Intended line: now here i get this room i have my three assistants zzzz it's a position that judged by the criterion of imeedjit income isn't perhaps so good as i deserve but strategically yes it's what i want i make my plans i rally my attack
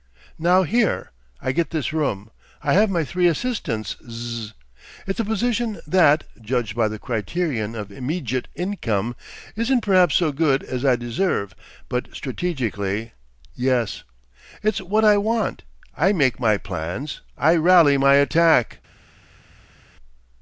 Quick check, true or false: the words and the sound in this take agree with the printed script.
true